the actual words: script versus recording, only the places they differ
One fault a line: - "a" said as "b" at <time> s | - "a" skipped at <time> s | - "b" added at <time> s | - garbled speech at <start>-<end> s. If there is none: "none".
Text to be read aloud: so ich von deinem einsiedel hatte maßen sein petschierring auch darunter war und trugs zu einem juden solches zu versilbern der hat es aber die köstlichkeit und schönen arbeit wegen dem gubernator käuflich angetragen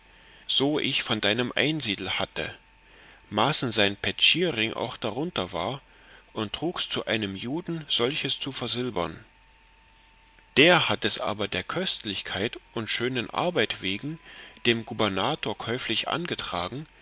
- "die" said as "der" at 11.5 s